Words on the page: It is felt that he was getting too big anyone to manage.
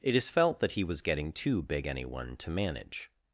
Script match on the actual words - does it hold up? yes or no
yes